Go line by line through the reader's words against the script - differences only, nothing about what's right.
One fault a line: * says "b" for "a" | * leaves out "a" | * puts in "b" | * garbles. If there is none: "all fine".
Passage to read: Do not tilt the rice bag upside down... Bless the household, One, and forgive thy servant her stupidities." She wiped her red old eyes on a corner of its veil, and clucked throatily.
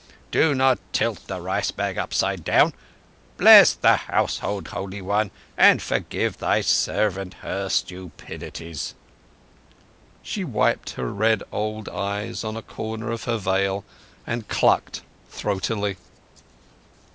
* puts in "Holy"
* says "her" for "its"